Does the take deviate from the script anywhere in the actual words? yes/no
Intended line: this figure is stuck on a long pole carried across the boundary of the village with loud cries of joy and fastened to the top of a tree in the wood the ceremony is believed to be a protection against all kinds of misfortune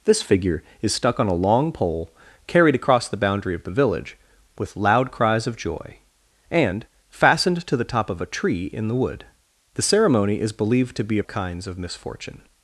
yes